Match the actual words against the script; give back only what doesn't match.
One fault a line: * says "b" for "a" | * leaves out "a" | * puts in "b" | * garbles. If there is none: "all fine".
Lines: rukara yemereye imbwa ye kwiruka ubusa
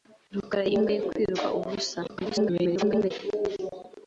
* leaves out "yemereye"
* garbles